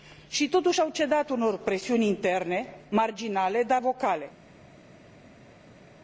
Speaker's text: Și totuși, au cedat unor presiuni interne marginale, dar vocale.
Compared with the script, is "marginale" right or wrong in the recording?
right